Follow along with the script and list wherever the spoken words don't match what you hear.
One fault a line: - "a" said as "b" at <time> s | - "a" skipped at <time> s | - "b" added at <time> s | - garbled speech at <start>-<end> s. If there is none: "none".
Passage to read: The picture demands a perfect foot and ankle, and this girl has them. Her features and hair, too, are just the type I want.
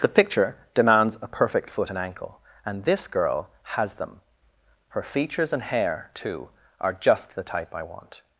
none